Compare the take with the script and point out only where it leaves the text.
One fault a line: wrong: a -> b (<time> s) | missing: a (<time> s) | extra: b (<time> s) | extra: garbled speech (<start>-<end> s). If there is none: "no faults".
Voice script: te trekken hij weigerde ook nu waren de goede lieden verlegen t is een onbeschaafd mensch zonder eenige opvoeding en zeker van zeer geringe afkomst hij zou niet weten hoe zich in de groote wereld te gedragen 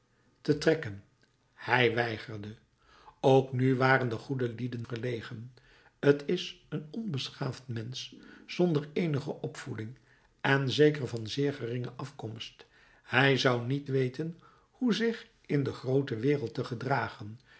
no faults